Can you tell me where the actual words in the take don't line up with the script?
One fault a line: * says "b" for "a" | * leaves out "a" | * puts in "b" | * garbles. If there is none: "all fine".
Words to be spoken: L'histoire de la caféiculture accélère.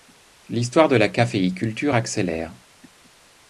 all fine